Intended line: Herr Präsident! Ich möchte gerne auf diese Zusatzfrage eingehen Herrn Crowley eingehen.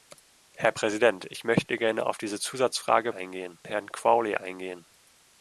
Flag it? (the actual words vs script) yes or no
no